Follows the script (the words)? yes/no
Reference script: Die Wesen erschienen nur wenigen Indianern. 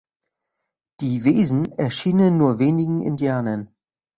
yes